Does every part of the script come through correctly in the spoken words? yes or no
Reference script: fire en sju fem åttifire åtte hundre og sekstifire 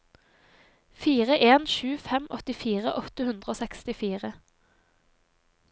yes